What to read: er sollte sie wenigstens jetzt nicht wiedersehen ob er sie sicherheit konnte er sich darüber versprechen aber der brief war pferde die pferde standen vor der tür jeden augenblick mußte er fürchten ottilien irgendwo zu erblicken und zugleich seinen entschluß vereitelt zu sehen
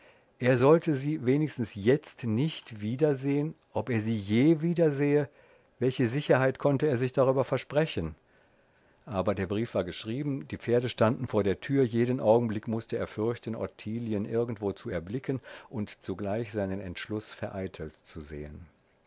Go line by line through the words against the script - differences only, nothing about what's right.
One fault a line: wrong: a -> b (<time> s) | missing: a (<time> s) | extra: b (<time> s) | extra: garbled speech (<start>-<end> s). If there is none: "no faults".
extra: je wiedersähe welche (4.2 s)
wrong: pferde -> geschrieben (9.8 s)